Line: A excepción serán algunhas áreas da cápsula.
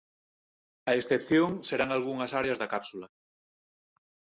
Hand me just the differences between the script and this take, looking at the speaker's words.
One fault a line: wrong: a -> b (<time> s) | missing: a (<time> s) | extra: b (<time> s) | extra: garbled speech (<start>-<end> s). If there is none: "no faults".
no faults